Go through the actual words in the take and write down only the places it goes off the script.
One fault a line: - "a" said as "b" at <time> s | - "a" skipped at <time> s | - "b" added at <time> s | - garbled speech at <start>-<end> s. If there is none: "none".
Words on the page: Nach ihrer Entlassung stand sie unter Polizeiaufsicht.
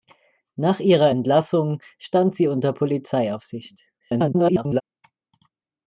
- garbled speech at 4.0-4.8 s